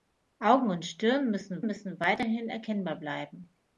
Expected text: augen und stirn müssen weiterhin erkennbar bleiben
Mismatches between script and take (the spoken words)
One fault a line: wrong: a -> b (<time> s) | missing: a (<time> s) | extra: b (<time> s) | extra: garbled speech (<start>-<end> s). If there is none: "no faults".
extra: müssen (1.6 s)